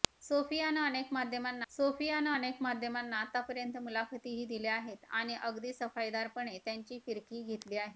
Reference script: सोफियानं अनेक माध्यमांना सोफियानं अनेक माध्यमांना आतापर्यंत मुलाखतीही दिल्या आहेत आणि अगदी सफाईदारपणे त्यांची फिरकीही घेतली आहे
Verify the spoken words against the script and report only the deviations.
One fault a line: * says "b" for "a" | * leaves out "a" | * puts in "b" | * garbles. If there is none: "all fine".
all fine